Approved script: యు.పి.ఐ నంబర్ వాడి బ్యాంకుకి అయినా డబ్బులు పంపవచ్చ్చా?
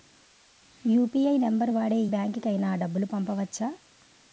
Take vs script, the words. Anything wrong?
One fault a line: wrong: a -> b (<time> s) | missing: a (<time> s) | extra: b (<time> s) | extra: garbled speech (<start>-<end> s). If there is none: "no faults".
no faults